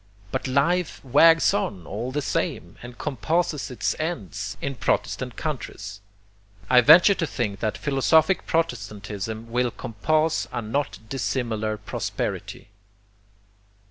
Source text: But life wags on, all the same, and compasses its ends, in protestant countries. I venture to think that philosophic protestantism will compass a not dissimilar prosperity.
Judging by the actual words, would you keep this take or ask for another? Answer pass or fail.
pass